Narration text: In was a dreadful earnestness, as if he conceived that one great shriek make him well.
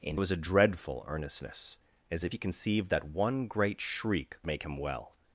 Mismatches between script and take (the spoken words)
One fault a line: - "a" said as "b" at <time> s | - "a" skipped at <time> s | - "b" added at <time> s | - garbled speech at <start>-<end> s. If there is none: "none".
none